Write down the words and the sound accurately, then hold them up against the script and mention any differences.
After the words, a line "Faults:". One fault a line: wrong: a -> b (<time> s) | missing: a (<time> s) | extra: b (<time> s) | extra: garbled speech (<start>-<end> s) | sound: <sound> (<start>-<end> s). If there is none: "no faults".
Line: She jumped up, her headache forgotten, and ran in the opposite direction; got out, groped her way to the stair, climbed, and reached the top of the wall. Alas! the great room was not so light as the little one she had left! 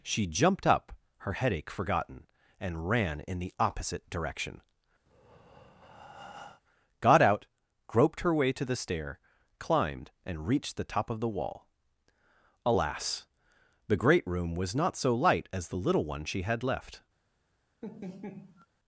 She jumped up, her headache forgotten, and ran in the opposite direction; got out, groped her way to the stair, climbed, and reached the top of the wall. Alas! the great room was not so light as the little one she had left!
Faults:
sound: breath (5.1-6.6 s)
sound: laugh (17.8-18.7 s)